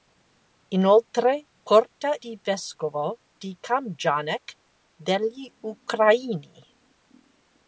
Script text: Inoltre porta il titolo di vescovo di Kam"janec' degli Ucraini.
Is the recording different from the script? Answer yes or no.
yes